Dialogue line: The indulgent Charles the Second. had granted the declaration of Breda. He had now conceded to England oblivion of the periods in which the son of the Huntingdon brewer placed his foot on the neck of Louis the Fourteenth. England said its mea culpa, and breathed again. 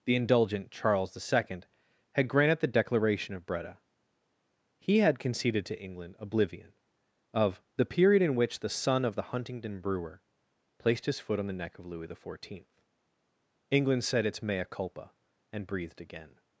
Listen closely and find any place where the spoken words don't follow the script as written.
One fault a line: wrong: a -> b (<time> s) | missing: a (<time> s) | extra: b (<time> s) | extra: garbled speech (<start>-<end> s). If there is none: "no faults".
missing: now (5.2 s)
wrong: periods -> period (7.8 s)